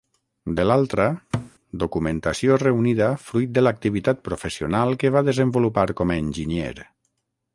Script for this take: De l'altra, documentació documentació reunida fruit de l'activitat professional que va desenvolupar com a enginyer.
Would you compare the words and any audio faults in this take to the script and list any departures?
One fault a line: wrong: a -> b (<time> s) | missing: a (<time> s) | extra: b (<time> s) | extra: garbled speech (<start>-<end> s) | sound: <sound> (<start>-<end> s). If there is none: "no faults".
sound: thud (1.3-1.5 s)
missing: documentació (2.6 s)